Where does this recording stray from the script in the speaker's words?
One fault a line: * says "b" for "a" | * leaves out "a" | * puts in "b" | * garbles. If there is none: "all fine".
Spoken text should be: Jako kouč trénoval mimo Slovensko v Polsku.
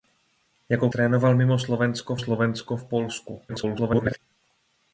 * leaves out "kouč"
* puts in "Slovensko"
* garbles